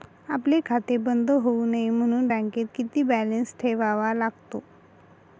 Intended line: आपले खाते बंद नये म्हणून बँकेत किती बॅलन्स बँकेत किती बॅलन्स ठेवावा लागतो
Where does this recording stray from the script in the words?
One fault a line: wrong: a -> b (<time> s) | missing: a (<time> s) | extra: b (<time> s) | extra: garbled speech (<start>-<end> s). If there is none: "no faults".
extra: होऊ (1.4 s)
missing: बँकेत किती बॅलन्स (3.5 s)